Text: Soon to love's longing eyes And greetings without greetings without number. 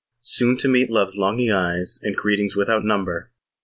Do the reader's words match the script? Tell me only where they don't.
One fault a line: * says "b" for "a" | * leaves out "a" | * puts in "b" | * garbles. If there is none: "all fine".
* puts in "meet"
* leaves out "greetings without"